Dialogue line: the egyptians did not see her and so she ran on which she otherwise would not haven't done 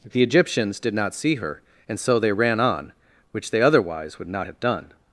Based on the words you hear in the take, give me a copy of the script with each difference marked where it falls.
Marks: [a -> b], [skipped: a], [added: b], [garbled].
the egyptians did not see her and so [she -> they] ran on which [she -> they] otherwise would not [haven't -> have] done